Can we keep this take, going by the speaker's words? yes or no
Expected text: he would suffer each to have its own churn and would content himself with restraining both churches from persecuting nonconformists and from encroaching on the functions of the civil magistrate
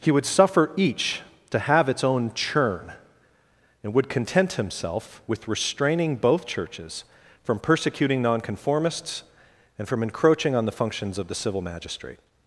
yes